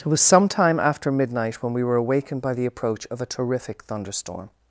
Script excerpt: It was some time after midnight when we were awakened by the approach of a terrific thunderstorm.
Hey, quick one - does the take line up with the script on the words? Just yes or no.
yes